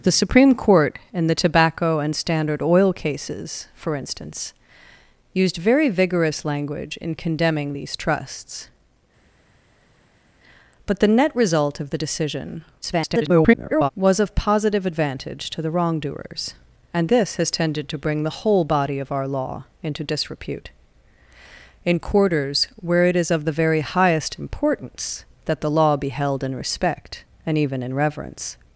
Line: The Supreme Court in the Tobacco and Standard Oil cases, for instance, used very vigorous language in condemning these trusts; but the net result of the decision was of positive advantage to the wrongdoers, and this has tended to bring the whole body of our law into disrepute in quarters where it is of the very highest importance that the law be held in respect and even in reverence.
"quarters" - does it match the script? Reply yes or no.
yes